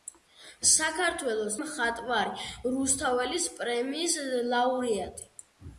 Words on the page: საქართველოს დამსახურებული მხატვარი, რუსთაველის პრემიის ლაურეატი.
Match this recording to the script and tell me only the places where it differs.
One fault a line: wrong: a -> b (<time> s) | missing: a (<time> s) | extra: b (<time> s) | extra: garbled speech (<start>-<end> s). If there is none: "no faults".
missing: დამსახურებული (1.6 s)